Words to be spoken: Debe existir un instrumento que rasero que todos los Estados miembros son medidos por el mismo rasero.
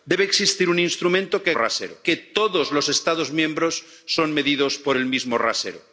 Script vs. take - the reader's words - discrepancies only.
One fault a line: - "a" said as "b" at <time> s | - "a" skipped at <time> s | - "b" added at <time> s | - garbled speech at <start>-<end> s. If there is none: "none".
none